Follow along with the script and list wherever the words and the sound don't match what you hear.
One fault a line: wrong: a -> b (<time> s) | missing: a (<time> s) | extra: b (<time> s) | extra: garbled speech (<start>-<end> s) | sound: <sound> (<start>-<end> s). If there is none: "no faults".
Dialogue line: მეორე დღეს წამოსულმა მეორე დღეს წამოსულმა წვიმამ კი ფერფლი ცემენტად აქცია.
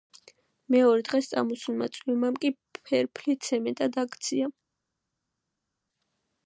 missing: მეორე დღეს წამოსულმა (1.9 s)